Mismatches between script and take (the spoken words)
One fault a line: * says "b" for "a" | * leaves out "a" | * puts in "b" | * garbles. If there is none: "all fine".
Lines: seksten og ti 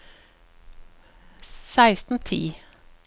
all fine